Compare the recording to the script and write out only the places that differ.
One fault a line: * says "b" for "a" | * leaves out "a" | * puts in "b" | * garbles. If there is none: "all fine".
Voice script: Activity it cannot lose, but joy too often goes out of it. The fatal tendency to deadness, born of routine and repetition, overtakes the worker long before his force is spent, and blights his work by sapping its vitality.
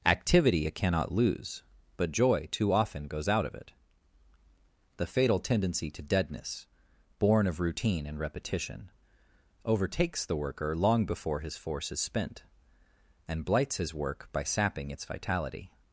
all fine